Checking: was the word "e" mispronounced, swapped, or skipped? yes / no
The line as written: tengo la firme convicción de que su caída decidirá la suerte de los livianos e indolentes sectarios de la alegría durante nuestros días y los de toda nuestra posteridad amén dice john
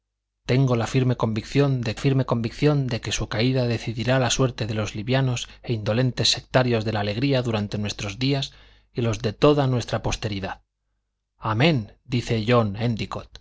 no